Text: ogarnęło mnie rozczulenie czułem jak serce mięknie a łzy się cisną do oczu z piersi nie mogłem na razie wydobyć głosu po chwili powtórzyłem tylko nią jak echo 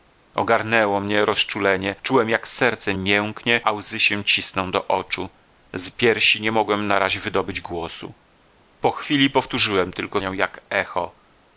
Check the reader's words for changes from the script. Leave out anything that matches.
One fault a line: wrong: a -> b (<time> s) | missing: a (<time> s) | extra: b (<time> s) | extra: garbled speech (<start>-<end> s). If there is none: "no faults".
no faults